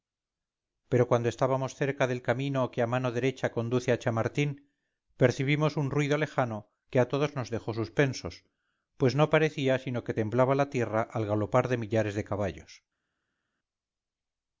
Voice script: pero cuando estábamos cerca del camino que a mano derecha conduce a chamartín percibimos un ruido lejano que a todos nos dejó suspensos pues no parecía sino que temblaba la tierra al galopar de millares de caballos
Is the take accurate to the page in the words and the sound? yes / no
yes